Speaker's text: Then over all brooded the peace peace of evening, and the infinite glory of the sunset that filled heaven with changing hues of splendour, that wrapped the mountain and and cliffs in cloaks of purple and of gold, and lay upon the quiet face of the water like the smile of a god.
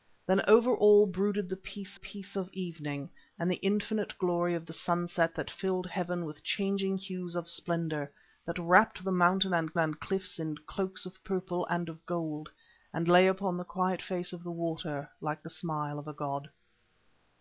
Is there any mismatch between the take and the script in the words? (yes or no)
no